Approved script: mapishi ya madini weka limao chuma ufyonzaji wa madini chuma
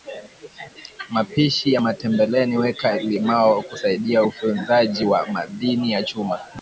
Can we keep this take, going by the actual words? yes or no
no